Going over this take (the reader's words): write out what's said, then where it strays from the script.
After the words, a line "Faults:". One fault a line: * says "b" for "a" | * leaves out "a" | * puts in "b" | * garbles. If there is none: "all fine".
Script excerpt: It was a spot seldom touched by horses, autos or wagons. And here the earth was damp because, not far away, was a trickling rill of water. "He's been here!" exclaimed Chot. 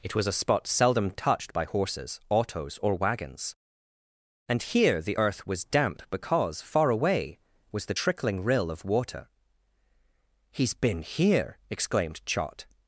It was a spot seldom touched by horses, autos or wagons. And here the earth was damp because, far away, was the trickling rill of water. "He's been here!" exclaimed Chot.
Faults:
* leaves out "not"
* says "the" for "a"